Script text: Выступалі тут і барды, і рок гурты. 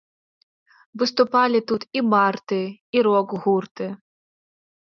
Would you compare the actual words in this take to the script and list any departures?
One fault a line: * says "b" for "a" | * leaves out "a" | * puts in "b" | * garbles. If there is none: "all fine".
all fine